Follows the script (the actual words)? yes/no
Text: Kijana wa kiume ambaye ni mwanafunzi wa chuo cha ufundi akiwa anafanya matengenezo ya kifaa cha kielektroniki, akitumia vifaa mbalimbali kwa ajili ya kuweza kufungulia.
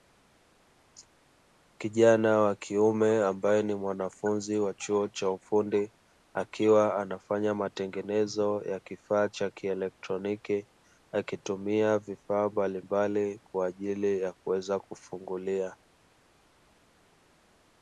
yes